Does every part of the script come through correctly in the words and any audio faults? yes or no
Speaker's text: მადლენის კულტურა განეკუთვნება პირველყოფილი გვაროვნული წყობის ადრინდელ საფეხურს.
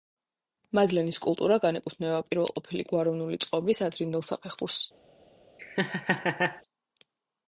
no